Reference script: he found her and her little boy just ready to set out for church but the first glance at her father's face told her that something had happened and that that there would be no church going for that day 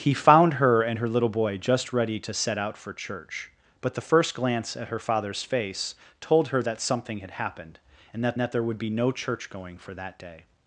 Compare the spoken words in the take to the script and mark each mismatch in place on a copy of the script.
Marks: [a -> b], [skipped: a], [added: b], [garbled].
he found her and her little boy just ready to set out for church but the first glance at her father's face told her that something had happened and that that there would be no church going for that day